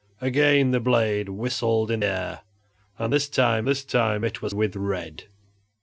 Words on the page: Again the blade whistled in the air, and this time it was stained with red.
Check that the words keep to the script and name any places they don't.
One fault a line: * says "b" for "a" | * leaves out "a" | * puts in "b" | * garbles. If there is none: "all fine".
* leaves out "the"
* puts in "this time"
* leaves out "stained"